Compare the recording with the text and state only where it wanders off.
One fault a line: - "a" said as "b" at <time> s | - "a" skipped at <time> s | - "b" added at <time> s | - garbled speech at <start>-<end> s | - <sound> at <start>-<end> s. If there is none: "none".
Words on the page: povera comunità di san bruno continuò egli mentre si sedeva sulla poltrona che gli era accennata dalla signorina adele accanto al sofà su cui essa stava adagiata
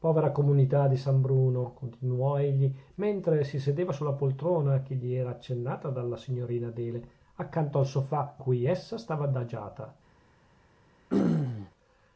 - "su" skipped at 8.3 s
- throat clearing at 11.1-11.7 s